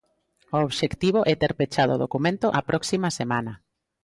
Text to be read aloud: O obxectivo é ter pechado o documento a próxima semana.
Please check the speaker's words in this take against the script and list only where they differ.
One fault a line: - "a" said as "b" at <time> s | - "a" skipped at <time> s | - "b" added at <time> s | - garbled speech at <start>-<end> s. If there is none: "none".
none